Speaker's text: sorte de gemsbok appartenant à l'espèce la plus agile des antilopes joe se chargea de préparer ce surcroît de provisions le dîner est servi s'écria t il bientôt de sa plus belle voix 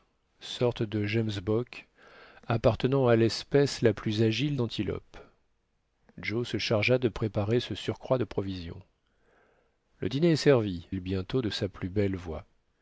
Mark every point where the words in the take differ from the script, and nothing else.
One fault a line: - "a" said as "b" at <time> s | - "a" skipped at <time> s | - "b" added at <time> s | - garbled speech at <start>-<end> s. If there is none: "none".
- "des" skipped at 4.6 s
- "s'écria t" skipped at 10.9 s